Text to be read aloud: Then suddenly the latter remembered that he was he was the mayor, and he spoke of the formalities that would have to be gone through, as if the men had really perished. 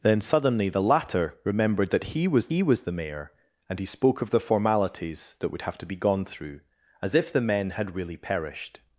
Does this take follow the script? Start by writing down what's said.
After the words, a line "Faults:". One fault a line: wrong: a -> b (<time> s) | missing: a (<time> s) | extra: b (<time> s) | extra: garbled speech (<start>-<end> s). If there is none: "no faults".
Then suddenly the latter remembered that he was he was the mayor, and he spoke of the formalities that would have to be gone through, as if the men had really perished.
Faults:
no faults